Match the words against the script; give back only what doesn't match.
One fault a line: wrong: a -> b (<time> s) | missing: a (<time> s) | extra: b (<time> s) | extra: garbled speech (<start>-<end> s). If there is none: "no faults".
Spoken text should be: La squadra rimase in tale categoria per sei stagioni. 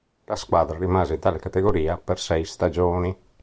no faults